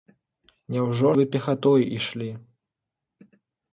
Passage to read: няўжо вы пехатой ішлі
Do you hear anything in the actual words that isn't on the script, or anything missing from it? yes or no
no